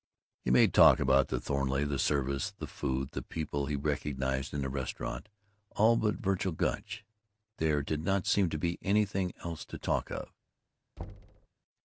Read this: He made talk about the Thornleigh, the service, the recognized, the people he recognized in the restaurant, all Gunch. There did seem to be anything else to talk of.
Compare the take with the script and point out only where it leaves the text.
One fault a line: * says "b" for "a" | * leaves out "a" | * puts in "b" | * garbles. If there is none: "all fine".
* says "food" for "recognized"
* puts in "but Vergil"
* puts in "not"